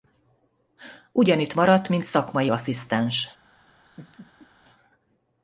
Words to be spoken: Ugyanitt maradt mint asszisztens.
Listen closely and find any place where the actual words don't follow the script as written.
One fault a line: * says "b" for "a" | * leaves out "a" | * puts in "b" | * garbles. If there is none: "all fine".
* puts in "szakmai"